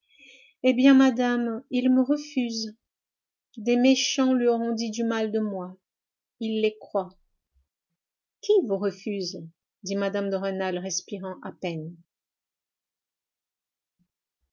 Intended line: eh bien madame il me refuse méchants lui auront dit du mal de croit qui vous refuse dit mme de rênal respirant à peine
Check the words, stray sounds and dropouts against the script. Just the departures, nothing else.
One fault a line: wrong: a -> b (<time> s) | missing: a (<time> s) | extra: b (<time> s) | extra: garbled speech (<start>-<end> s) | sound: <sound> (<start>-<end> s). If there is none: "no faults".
extra: des (3.6 s)
extra: moi il les (5.4 s)